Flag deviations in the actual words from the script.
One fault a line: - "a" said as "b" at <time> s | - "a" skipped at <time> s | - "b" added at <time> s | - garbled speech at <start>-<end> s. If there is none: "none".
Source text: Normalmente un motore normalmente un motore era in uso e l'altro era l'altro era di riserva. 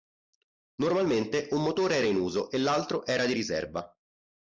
- "normalmente un motore" skipped at 2.0 s
- "l'altro era" skipped at 3.3 s